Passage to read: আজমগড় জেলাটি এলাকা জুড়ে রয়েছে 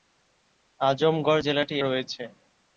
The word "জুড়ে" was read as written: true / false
false